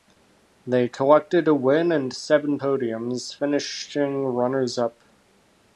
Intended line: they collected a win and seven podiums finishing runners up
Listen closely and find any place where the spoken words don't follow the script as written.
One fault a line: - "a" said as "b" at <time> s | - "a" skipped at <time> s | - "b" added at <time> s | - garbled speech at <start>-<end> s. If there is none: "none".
none